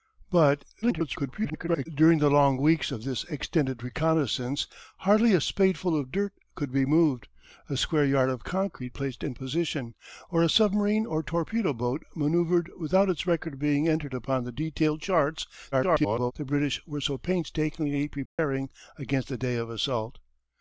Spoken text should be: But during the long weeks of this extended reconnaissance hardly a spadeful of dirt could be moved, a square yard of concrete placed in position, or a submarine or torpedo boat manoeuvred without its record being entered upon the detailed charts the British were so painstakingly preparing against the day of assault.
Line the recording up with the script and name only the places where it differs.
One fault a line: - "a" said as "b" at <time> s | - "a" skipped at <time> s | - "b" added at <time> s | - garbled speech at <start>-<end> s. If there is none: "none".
- garbled speech at 0.8-1.9 s
- garbled speech at 15.7-16.3 s